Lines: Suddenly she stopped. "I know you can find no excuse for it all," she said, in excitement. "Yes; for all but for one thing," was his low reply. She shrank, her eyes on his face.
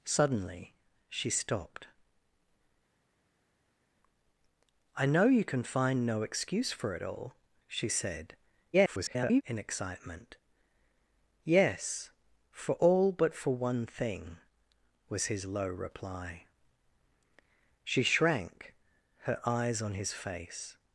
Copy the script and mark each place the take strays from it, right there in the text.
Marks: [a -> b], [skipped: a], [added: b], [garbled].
Suddenly she stopped. "I know you can find no excuse for it all," she said, [garbled] in excitement. "Yes; for all but for one thing," was his low reply. She shrank, her eyes on his face.